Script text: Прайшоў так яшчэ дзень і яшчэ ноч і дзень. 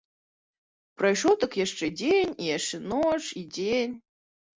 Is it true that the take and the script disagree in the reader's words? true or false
false